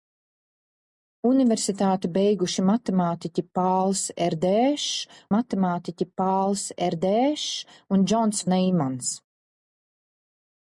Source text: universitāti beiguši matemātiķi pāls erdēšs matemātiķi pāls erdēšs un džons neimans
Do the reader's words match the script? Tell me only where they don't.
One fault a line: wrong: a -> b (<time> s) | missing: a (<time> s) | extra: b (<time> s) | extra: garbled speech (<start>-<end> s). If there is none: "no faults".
no faults